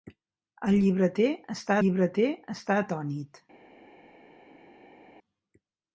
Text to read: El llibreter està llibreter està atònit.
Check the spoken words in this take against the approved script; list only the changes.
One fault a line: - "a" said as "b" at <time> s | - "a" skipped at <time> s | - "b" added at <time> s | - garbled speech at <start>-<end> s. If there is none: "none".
none